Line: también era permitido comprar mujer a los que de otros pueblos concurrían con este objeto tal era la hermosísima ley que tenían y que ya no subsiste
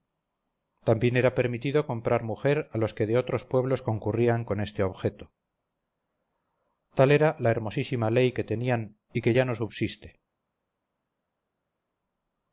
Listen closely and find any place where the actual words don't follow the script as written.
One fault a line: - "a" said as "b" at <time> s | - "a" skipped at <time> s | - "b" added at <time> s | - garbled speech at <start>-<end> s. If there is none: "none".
none